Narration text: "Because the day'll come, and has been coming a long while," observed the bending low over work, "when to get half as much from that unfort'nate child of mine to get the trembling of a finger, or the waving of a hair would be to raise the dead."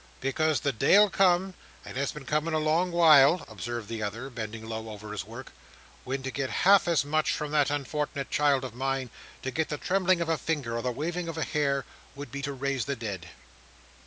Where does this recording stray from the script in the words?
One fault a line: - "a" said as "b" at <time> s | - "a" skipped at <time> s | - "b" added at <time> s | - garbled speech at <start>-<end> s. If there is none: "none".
- "other" added at 4.0 s
- "his" added at 5.1 s